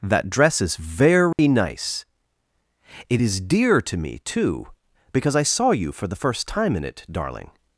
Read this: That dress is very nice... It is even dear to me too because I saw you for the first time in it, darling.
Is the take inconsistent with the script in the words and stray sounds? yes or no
yes